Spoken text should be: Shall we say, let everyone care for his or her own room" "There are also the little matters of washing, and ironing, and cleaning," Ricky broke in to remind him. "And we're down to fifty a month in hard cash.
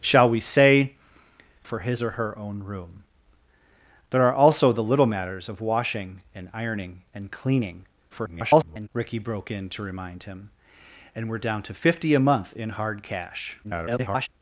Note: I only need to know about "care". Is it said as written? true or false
false